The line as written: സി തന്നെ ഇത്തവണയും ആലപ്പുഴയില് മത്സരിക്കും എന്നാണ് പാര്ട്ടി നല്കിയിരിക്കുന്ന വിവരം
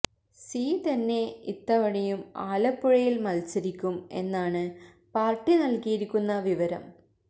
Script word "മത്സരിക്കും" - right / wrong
right